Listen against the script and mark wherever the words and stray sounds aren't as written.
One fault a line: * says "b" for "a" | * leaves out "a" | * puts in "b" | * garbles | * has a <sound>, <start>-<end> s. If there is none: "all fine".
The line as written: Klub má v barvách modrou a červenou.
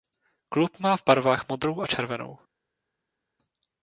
all fine